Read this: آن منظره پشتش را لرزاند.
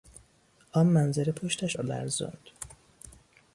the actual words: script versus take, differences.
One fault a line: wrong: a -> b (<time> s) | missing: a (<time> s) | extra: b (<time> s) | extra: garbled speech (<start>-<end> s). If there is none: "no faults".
no faults